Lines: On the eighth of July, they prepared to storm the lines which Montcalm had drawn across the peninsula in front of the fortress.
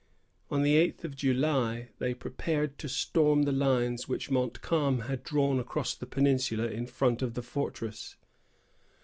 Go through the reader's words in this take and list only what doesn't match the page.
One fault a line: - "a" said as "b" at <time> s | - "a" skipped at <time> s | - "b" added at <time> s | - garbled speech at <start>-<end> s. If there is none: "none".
none